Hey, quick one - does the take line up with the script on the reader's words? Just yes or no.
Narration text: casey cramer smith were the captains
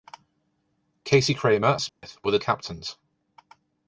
yes